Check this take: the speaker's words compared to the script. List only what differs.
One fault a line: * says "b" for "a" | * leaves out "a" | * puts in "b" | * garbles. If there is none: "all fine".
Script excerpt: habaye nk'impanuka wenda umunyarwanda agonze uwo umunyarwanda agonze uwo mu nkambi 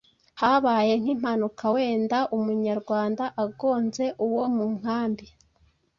* leaves out "umunyarwanda agonze uwo"